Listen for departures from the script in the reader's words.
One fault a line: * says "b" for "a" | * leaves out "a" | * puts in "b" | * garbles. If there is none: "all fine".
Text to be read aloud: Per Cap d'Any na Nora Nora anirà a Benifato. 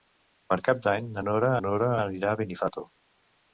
all fine